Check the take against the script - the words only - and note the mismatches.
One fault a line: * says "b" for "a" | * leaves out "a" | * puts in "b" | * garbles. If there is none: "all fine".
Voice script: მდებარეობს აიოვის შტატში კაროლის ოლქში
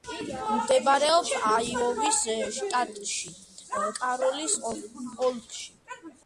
all fine